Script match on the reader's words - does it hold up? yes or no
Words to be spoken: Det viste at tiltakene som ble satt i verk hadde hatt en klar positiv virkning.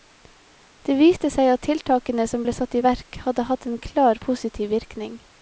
no